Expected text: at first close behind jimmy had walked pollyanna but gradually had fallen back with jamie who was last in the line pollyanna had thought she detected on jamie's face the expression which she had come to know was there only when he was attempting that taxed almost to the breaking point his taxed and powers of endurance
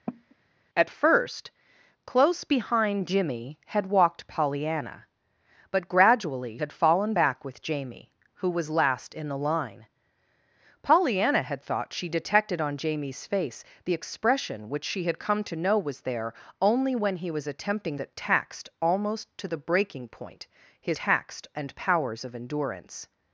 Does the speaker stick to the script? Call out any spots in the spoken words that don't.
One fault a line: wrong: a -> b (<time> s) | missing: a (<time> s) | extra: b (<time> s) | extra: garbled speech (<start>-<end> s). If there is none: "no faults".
no faults